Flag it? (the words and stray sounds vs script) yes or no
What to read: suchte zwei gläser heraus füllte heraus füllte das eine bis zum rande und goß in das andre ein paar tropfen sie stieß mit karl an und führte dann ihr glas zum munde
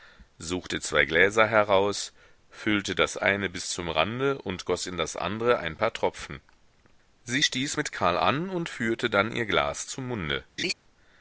yes